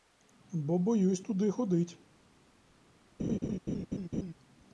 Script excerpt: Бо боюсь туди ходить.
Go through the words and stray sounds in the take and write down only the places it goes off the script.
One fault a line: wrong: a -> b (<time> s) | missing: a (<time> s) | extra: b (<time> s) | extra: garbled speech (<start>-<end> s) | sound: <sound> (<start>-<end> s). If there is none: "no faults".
sound: laugh (3.2-4.3 s)